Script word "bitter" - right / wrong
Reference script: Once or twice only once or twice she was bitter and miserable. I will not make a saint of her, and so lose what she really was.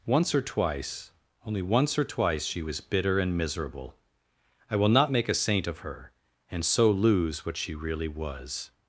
right